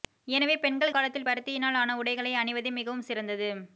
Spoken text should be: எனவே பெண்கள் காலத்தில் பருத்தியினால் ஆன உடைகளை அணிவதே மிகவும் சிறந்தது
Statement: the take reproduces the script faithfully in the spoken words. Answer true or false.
true